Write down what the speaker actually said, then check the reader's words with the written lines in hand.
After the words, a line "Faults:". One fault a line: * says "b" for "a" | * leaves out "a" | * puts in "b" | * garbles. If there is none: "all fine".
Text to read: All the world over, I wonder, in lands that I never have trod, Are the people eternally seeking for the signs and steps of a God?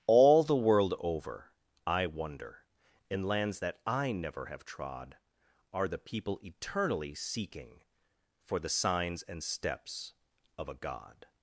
All the world over, I wonder, in lands that I never have trod, Are the people eternally seeking for the signs and steps of a God?
Faults:
all fine